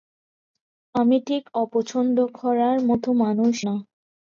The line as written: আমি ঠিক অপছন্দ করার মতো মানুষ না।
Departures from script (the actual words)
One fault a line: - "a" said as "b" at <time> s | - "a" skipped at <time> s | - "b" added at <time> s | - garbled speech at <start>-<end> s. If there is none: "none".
none